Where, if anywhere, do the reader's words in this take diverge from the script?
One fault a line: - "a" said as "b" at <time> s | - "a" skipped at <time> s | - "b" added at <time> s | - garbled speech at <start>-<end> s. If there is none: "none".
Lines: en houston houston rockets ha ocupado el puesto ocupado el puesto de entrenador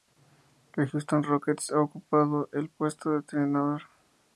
- "houston" skipped at 1.2 s
- "ocupado el puesto" skipped at 3.1 s